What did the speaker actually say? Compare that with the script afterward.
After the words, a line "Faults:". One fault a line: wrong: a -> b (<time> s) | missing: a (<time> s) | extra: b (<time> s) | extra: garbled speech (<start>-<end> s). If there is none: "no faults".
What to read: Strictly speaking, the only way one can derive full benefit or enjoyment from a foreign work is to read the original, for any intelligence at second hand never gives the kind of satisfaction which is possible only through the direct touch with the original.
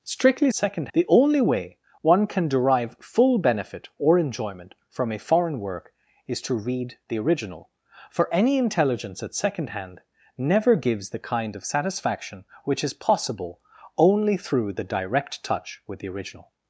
Strictly second, the only way one can derive full benefit or enjoyment from a foreign work is to read the original, for any intelligence at second hand never gives the kind of satisfaction which is possible only through the direct touch with the original.
Faults:
wrong: speaking -> second (0.5 s)